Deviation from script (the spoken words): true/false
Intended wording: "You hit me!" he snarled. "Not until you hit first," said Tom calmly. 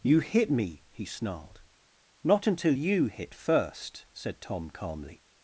false